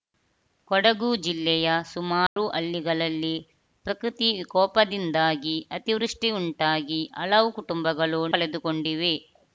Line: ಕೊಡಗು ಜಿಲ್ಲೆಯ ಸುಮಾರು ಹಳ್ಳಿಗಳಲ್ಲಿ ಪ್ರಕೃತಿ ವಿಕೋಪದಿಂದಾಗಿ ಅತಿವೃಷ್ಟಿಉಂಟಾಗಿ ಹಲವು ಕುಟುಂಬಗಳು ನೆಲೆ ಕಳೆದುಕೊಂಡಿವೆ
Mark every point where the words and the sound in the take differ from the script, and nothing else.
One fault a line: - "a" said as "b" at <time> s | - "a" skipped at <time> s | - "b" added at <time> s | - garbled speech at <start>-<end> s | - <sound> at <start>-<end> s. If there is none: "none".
- dropout at 2.3-2.4 s
- "ನೆಲೆ" skipped at 8.2 s